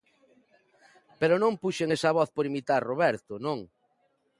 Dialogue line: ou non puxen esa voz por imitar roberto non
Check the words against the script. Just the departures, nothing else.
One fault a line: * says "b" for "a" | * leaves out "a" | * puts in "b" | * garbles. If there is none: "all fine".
* says "pero" for "ou"